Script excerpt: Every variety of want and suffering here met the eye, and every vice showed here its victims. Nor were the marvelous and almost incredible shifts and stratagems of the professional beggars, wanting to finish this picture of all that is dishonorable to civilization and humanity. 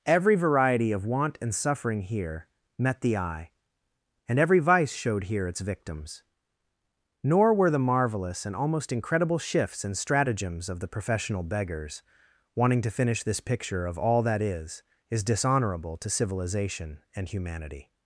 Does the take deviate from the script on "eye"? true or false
false